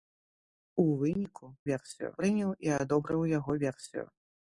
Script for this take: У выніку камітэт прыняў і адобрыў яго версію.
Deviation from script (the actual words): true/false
true